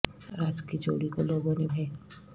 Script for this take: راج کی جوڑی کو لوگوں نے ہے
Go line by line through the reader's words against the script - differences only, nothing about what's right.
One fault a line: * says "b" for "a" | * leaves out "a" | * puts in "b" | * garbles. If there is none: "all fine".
all fine